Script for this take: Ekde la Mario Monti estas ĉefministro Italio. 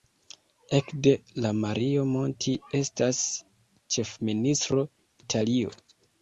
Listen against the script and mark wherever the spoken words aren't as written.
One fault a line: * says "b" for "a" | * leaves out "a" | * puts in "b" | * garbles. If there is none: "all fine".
all fine